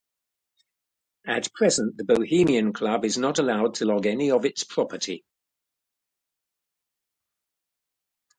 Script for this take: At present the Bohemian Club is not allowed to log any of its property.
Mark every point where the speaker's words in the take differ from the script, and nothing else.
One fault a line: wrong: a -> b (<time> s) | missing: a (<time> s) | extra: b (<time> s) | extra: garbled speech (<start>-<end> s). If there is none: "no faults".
no faults